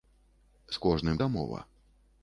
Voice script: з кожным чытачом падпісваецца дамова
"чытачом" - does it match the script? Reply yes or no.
no